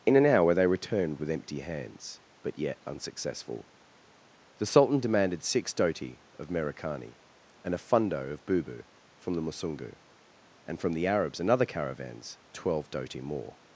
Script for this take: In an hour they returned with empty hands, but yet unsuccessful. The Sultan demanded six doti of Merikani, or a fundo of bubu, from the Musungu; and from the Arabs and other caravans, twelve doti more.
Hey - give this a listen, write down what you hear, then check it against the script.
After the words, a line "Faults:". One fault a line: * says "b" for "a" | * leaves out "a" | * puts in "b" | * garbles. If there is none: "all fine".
In an hour they returned with empty hands, but yet unsuccessful. The Sultan demanded six doti of Merikani, and a fundo of bubu, from the Musungu; and from the Arabs and other caravans, twelve doti more.
Faults:
* says "and" for "or"